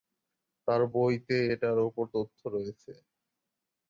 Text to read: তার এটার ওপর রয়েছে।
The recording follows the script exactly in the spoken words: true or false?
false